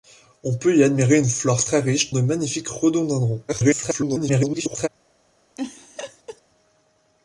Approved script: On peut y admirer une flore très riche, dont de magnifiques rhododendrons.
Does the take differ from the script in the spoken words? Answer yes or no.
yes